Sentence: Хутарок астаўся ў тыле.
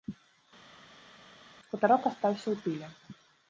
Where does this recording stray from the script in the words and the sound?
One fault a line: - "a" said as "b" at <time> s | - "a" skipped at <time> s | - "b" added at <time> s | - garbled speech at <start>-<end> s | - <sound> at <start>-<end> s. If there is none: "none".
none